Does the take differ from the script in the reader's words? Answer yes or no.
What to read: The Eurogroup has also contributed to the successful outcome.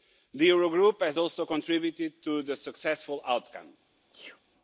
no